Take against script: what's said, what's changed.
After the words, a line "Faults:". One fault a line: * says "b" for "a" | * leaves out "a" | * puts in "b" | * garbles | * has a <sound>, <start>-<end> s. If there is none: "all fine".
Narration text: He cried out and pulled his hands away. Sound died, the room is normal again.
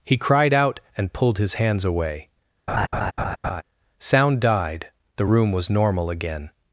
He cried out and pulled his hands away. Sound died, the room was normal again.
Faults:
* has a laugh, 2.7-3.6 s
* says "was" for "is"